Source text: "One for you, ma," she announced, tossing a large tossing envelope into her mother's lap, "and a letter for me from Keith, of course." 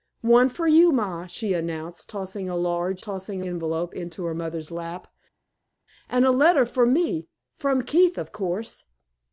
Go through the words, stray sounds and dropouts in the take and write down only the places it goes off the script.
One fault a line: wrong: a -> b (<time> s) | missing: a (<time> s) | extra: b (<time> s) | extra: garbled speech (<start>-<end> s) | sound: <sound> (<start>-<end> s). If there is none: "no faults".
no faults